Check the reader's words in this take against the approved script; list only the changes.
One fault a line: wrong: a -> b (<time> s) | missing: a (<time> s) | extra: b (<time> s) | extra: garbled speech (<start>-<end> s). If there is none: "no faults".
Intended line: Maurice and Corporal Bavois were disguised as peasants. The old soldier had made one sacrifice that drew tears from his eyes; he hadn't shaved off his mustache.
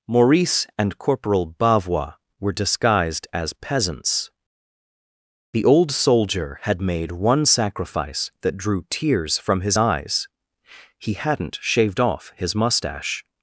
no faults